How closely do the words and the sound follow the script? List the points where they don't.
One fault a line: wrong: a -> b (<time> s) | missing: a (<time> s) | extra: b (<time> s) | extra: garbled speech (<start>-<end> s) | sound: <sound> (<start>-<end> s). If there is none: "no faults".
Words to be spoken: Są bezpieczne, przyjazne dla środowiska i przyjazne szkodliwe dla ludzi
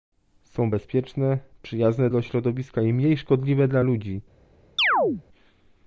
wrong: przyjazne -> mniej (2.9 s)
sound: chirp (4.8-5.2 s)